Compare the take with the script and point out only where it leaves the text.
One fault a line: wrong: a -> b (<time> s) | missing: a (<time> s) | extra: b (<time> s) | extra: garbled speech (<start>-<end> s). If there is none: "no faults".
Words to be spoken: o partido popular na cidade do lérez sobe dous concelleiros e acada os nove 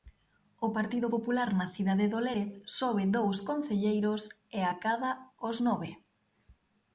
no faults